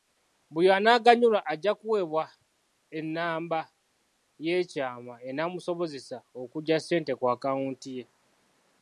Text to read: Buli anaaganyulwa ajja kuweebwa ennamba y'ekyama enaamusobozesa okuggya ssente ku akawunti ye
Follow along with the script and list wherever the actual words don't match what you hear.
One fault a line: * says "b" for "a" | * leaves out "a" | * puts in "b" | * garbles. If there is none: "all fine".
all fine